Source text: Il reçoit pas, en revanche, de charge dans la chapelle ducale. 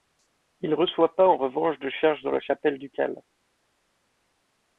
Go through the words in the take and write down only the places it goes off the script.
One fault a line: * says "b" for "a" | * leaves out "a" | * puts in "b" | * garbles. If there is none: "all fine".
all fine